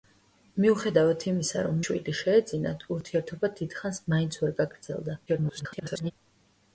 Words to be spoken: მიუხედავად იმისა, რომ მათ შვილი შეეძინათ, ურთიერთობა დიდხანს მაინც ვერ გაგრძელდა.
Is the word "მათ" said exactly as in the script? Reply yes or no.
no